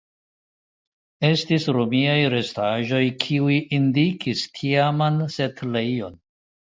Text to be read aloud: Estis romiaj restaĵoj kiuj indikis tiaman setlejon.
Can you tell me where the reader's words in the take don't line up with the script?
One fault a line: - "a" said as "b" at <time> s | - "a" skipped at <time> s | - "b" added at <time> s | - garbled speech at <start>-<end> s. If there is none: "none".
none